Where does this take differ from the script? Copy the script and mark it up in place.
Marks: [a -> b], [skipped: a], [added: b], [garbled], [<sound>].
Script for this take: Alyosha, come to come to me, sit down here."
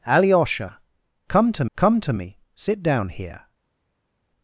Alyosha, come to come to me, sit down here."